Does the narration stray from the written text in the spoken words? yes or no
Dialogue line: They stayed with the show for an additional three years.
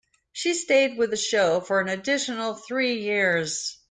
yes